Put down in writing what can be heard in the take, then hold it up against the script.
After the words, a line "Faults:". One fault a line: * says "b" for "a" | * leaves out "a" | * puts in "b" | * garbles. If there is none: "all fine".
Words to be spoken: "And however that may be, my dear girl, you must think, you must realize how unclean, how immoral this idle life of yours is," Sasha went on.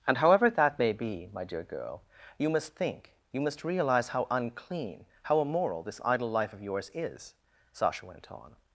"And however that may be, my dear girl, you must think, you must realize how unclean, how immoral this idle life of yours is," Sasha went on.
Faults:
all fine